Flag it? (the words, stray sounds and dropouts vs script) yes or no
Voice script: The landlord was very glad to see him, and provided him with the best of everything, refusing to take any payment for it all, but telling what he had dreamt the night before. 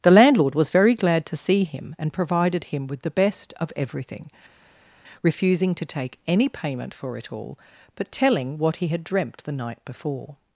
no